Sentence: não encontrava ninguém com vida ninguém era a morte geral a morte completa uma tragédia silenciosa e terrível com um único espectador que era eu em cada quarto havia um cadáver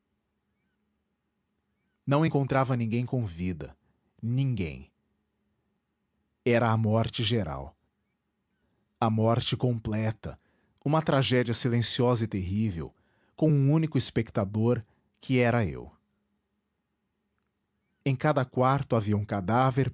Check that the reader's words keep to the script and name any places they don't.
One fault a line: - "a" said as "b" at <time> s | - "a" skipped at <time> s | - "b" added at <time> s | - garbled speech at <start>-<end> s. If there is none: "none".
none